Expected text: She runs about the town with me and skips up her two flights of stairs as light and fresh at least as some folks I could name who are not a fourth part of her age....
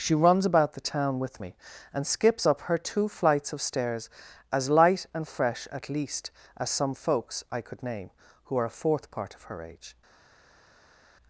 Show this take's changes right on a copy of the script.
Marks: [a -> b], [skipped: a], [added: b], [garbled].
She runs about the town with me and skips up her two flights of stairs as light and fresh at least as some folks I could name who are [skipped: not] a fourth part of her age....